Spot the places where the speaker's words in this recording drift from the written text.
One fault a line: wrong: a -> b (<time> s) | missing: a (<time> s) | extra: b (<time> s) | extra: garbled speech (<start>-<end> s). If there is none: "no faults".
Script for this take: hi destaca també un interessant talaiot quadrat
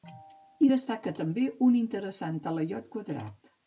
no faults